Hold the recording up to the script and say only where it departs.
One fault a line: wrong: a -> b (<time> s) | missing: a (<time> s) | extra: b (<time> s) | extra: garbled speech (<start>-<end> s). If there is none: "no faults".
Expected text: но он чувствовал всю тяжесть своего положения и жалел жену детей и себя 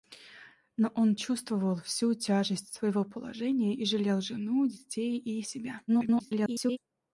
extra: garbled speech (5.9-6.8 s)